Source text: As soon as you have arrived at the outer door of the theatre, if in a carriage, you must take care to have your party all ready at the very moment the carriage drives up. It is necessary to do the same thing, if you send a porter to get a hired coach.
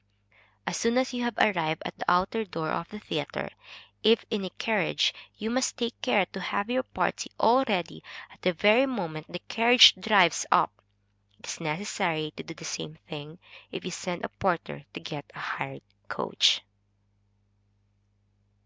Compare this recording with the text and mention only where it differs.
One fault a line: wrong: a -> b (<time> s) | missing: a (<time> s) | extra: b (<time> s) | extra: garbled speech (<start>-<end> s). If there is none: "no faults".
no faults